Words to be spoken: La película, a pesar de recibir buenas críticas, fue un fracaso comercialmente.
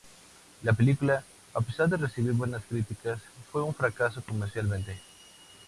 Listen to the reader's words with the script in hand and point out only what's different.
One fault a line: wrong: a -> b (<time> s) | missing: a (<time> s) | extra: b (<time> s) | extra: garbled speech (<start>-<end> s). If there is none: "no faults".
no faults